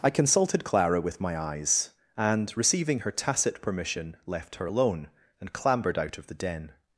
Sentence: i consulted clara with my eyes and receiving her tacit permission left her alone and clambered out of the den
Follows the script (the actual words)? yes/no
yes